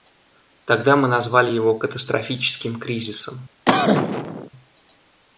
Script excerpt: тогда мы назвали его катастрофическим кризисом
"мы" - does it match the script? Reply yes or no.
yes